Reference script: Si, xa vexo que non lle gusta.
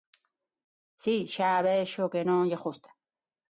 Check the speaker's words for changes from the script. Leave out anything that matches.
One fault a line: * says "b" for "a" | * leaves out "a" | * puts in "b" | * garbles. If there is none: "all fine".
all fine